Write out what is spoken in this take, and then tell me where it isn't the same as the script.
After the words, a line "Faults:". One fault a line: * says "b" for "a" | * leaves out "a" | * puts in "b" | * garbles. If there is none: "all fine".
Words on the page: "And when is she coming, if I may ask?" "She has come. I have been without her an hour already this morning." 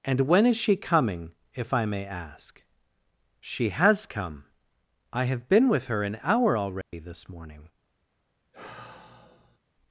"And when is she coming, if I may ask?" "She has come. I have been with her an hour already this morning."
Faults:
* says "with" for "without"